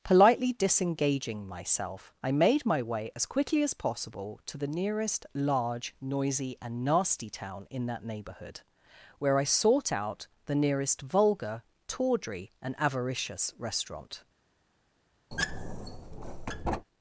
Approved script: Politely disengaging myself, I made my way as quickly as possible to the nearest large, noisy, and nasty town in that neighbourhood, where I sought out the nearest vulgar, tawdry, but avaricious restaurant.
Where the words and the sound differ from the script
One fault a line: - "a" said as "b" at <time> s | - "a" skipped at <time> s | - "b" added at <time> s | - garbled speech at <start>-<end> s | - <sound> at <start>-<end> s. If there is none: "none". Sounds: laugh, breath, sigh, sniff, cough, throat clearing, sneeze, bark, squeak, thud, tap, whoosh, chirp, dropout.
- "but" said as "and" at 12.6 s
- squeak at 15.3-16.9 s